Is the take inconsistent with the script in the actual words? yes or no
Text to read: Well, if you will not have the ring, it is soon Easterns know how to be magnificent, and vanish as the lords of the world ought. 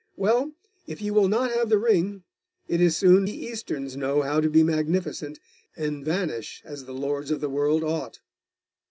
no